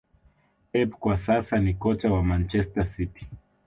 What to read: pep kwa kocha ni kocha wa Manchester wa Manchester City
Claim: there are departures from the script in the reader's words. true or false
true